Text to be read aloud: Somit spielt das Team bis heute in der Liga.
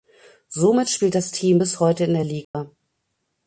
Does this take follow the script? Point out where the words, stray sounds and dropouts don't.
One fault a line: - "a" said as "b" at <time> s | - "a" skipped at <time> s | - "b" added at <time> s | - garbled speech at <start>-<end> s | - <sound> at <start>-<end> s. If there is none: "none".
- dropout at 2.4-2.5 s